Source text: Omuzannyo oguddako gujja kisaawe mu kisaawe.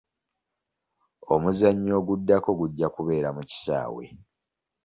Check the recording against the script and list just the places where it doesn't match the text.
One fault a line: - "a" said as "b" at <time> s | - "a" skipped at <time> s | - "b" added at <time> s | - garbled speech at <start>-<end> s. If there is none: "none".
- "kisaawe" said as "kubeera" at 3.0 s